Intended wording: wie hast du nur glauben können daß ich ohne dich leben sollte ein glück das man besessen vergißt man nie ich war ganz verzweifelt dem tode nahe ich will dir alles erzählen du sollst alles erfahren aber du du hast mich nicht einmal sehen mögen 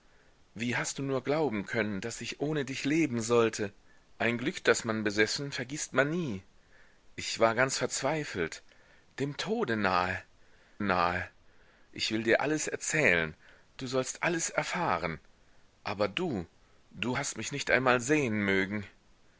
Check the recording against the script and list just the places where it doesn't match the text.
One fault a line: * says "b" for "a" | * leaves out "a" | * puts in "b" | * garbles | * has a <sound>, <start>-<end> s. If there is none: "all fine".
* puts in "nahe"